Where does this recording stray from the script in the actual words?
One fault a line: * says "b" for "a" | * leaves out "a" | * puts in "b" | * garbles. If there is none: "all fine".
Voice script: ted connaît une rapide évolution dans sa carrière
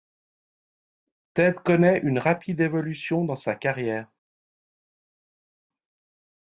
all fine